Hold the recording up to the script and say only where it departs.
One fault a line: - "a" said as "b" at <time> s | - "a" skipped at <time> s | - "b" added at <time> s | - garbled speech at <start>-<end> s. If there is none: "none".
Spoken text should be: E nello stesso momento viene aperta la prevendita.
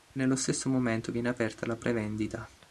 none